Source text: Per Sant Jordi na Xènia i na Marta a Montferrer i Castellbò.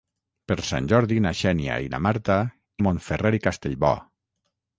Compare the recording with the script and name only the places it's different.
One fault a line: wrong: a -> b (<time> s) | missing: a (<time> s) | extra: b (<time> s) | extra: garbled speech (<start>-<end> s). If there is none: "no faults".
no faults